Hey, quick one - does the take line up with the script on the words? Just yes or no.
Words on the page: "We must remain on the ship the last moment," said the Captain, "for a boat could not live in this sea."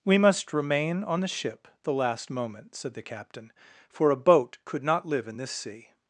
yes